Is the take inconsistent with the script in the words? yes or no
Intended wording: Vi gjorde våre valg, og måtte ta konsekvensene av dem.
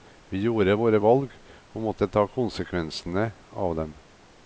no